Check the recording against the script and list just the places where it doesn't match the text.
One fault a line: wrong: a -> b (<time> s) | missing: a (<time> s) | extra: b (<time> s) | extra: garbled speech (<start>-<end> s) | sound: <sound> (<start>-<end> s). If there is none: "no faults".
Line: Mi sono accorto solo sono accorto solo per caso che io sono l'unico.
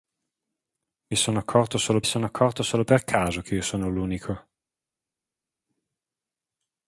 no faults